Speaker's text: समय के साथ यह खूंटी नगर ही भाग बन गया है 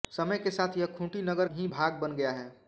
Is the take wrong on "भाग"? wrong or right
right